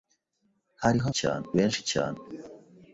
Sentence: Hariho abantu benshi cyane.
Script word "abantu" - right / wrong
wrong